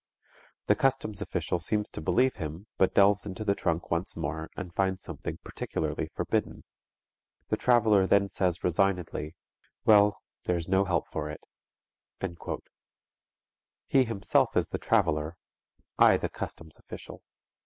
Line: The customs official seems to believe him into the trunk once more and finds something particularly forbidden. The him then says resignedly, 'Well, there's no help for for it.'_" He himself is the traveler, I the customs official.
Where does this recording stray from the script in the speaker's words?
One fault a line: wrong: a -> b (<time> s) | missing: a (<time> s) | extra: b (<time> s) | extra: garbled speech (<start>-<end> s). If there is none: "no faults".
extra: but delves (2.8 s)
wrong: him -> traveler (7.6 s)
missing: for (11.3 s)